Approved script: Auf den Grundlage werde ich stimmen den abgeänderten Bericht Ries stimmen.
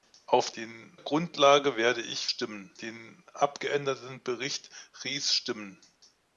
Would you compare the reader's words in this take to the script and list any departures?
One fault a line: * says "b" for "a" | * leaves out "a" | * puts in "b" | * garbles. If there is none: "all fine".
all fine